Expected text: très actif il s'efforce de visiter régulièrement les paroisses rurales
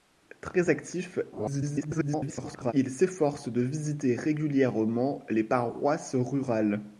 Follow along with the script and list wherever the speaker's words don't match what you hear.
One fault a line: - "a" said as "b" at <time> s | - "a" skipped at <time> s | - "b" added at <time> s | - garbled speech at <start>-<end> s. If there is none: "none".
- garbled speech at 1.3-2.7 s